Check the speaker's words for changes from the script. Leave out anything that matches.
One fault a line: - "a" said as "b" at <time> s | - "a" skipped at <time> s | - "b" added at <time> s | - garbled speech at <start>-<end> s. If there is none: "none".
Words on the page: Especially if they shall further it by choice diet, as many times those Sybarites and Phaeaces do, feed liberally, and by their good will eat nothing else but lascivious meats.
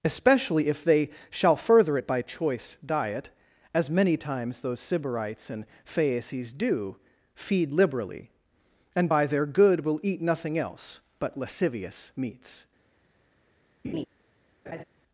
none